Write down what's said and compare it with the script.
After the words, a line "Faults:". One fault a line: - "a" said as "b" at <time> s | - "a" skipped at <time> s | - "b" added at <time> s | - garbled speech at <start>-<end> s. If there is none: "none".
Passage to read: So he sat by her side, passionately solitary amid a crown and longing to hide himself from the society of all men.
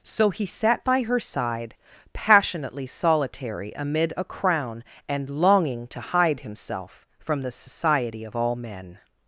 So he sat by her side, passionately solitary amid a crown and longing to hide himself from the society of all men.
Faults:
none